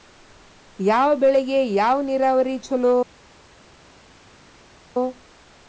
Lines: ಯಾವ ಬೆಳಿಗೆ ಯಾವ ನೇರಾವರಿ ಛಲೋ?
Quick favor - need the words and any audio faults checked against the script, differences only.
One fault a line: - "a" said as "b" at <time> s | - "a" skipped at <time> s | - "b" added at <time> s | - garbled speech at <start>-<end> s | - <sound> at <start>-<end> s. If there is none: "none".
none